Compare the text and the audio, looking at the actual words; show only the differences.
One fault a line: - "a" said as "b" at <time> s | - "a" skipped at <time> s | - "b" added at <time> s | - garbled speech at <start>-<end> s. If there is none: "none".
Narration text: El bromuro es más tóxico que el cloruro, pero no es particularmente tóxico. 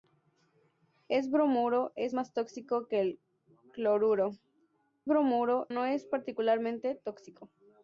- "pero" said as "bromuro" at 5.0 s